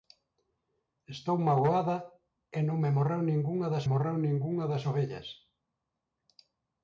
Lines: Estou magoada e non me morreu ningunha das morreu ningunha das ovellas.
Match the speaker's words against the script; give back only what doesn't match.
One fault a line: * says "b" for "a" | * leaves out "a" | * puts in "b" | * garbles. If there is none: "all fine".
all fine